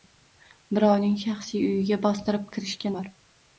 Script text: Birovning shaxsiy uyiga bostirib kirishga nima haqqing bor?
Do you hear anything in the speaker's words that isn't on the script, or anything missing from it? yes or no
yes